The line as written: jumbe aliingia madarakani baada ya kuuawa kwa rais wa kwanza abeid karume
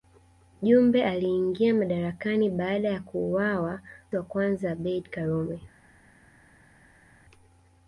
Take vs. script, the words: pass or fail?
fail